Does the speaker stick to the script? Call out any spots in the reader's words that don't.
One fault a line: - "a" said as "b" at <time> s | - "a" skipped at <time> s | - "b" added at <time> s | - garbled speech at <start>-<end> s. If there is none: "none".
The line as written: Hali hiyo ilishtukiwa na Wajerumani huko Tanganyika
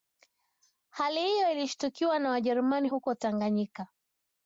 none